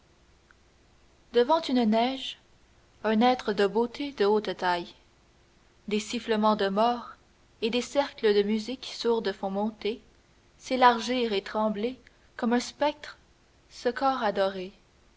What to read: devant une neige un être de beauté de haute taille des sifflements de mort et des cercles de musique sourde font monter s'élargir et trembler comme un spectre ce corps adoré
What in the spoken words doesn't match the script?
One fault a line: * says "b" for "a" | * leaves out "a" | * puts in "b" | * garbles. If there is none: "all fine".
all fine